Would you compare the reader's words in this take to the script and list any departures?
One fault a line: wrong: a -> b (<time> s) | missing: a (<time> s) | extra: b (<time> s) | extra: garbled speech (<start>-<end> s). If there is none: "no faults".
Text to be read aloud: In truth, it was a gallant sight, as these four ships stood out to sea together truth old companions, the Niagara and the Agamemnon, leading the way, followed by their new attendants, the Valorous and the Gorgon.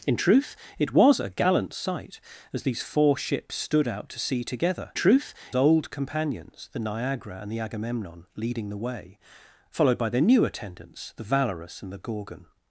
no faults